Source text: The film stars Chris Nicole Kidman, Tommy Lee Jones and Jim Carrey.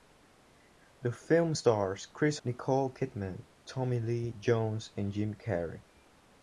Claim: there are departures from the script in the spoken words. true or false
false